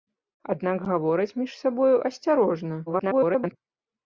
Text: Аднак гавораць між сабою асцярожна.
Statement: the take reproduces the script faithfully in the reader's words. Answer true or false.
false